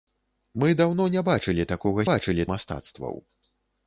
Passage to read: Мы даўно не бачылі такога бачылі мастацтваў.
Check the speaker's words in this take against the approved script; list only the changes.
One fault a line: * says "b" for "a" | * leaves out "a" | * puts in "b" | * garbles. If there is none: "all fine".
all fine